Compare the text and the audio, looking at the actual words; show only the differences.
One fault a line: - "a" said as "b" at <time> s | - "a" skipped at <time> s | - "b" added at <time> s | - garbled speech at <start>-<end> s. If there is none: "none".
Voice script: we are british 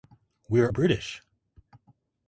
none